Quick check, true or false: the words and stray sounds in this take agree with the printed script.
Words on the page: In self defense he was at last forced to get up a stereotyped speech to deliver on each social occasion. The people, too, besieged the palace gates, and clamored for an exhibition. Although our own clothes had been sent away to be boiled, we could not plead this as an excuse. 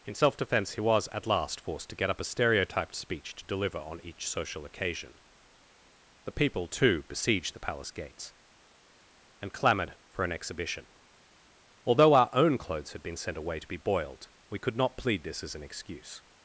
true